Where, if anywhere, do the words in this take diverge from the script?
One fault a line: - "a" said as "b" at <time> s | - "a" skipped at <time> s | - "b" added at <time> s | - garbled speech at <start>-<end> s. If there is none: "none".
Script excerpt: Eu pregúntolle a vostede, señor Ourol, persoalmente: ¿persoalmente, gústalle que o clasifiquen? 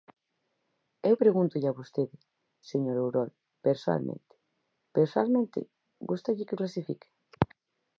none